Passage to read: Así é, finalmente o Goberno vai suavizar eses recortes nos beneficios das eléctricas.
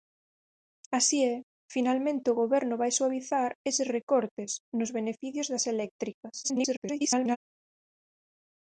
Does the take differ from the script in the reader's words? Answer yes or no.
yes